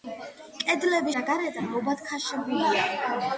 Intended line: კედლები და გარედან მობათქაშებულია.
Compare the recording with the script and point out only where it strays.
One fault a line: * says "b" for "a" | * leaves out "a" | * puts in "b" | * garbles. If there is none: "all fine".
all fine